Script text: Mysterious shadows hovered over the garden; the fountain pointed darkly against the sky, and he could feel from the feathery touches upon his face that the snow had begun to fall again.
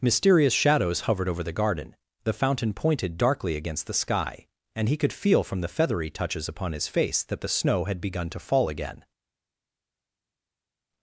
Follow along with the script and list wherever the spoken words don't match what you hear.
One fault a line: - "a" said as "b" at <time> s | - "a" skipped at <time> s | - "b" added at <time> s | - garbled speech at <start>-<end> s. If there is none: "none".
none